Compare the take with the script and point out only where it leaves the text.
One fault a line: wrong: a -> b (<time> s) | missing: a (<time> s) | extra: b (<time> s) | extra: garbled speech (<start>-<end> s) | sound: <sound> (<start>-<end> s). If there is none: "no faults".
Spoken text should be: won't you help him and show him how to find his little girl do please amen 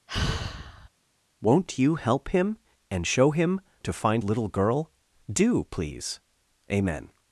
sound: sigh (0.1-0.9 s)
missing: how (3.6 s)
missing: his (4.2 s)